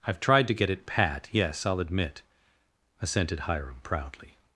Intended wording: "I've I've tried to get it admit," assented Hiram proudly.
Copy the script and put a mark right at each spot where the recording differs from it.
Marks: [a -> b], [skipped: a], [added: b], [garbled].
"I've [skipped: I've] tried to get it [added: pat yes I'll] admit," assented Hiram proudly.